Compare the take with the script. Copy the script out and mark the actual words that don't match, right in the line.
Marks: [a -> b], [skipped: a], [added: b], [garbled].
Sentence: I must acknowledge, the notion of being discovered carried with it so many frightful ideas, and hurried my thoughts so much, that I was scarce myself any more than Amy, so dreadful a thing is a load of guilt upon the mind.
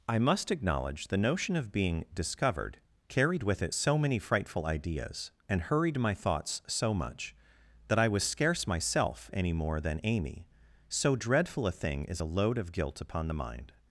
I must acknowledge, the notion of being discovered carried with it so many frightful ideas, and hurried my thoughts so much, that I was scarce myself any more than Amy, so dreadful a thing is a load of guilt upon the mind.